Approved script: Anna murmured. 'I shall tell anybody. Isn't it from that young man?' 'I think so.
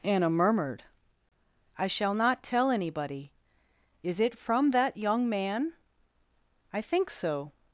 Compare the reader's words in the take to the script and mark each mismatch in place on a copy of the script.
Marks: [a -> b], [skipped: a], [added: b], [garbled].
Anna murmured. 'I shall [added: not] tell anybody. [Isn't -> Is] it from that young man?' 'I think so.